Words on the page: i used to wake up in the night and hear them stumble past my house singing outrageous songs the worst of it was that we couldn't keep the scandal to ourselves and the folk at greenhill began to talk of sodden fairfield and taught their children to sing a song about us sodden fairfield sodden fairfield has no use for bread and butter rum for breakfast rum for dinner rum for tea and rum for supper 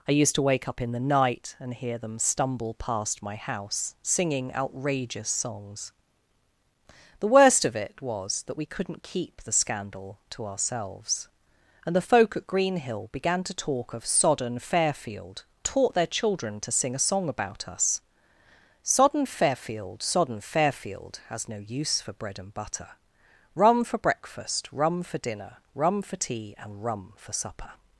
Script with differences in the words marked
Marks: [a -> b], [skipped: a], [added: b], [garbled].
i used to wake up in the night and hear them stumble past my house singing outrageous songs the worst of it was that we couldn't keep the scandal to ourselves and the folk at greenhill began to talk of sodden fairfield [skipped: and] taught their children to sing a song about us sodden fairfield sodden fairfield has no use for bread and butter rum for breakfast rum for dinner rum for tea and rum for supper